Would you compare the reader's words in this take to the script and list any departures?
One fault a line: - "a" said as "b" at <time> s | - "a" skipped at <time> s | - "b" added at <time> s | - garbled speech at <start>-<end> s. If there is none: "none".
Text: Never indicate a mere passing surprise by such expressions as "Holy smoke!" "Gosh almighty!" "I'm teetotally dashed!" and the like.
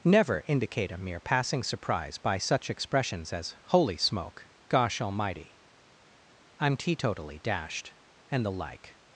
none